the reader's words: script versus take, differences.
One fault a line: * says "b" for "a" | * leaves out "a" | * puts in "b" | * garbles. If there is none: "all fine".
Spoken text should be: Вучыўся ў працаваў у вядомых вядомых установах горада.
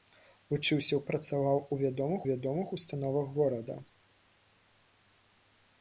all fine